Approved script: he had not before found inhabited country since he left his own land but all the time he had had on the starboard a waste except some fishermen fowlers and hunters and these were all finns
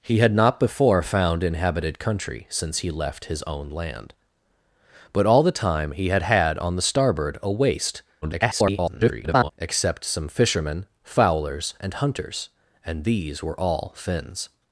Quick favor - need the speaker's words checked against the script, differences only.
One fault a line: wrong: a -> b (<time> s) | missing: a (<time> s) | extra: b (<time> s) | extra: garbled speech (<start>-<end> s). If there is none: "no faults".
extra: garbled speech (8.2-9.5 s)